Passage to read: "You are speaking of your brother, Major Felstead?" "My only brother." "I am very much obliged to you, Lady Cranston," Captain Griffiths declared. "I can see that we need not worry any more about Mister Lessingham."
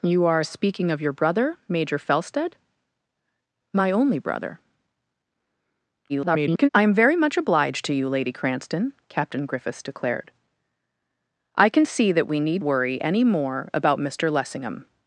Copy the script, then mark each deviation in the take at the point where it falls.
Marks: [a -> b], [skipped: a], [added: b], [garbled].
"You are speaking of your brother, Major Felstead?" "My only brother." [garbled] "I am very much obliged to you, Lady Cranston," Captain Griffiths declared. "I can see that we need [skipped: not] worry any more about Mister Lessingham."